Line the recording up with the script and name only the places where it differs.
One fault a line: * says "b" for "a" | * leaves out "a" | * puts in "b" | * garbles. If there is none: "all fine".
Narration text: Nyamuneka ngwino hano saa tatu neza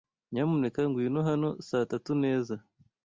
all fine